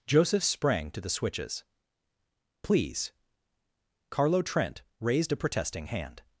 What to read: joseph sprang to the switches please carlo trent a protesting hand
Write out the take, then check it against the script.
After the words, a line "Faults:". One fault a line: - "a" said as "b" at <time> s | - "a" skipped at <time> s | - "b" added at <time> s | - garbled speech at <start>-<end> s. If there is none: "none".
joseph sprang to the switches please carlo trent raised a protesting hand
Faults:
- "raised" added at 5.0 s